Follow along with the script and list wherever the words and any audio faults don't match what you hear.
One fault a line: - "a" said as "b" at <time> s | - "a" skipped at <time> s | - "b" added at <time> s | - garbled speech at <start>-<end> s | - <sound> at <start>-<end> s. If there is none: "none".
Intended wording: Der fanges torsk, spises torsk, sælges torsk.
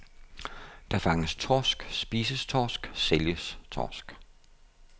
none